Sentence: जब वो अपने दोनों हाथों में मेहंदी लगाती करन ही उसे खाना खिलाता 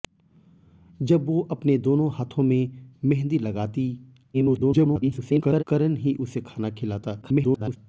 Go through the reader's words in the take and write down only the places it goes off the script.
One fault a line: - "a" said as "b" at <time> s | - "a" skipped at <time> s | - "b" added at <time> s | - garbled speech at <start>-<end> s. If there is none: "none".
- garbled speech at 4.3-5.6 s
- garbled speech at 7.2-7.8 s